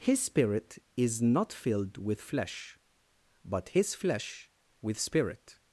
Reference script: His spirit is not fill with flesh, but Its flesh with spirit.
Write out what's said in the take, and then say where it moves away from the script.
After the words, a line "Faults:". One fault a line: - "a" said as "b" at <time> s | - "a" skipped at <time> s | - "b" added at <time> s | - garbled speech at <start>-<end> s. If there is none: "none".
His spirit is not filled with flesh, but His flesh with spirit.
Faults:
- "fill" said as "filled" at 1.5 s
- "Its" said as "His" at 3.7 s